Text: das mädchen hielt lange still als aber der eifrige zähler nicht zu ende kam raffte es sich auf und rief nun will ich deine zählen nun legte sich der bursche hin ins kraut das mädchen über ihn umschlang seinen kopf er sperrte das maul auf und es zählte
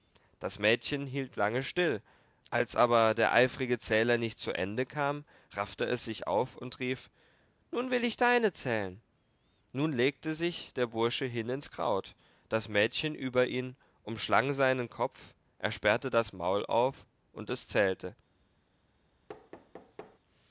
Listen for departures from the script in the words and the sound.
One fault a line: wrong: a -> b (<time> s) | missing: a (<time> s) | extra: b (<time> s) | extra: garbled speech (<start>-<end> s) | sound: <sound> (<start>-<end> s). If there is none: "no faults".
sound: thud (19.3-20.2 s)